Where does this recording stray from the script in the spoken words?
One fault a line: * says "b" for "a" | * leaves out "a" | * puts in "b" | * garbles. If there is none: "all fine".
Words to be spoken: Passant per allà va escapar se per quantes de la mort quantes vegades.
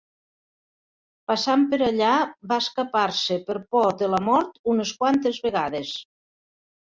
* says "por" for "quantes"
* puts in "unes"